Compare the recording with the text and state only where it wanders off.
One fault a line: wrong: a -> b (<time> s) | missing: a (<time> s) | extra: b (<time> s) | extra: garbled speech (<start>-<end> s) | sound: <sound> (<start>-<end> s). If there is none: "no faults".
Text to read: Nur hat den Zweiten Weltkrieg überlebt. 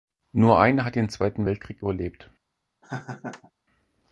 extra: eine (0.6 s)
sound: laugh (2.8-3.5 s)